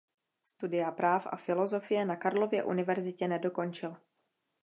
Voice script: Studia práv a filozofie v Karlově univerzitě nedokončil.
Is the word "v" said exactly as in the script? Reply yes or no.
no